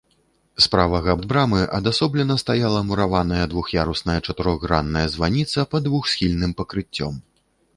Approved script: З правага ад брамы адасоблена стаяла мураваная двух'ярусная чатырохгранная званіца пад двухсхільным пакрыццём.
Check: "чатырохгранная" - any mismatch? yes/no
no